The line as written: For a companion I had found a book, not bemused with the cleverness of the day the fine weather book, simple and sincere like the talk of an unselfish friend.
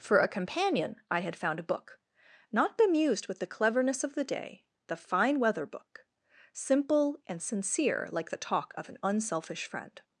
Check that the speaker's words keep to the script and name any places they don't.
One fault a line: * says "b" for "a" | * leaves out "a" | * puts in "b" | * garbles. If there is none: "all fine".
all fine